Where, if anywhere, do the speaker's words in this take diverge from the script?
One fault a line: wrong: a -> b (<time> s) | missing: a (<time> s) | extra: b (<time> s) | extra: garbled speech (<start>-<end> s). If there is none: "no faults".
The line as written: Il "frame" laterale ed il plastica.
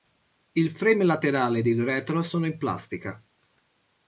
extra: retro sono in (1.8 s)